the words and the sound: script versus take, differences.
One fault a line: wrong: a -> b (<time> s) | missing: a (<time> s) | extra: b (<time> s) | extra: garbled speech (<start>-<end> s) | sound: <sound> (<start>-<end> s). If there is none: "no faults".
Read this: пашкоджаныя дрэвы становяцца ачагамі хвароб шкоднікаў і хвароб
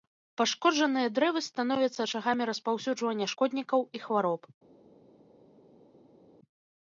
wrong: хвароб -> распаўсюджвання (2.5 s)